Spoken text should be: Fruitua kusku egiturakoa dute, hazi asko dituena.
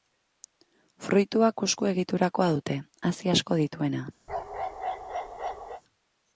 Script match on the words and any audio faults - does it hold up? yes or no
no